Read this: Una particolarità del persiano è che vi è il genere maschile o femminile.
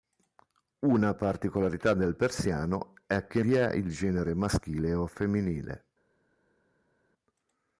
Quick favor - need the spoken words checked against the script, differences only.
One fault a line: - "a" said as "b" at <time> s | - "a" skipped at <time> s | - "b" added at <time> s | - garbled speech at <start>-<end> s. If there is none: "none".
none